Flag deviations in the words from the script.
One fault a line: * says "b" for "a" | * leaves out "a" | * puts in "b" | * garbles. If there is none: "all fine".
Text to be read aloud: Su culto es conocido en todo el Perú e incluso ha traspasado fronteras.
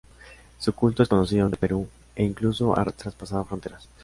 * leaves out "todo"